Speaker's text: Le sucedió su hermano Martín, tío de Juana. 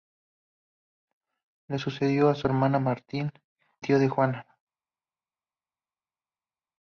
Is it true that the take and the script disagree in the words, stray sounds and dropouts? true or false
false